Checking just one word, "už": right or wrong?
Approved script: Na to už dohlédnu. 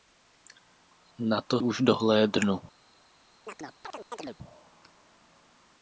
right